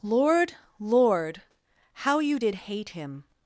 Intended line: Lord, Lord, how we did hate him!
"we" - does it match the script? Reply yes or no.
no